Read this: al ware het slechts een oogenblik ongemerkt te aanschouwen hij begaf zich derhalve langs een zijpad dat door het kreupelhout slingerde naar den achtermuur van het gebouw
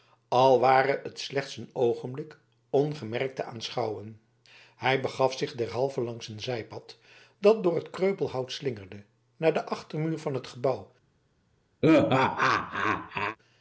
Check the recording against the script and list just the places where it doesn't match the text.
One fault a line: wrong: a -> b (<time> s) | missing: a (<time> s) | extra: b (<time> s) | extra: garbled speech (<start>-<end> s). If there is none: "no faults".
no faults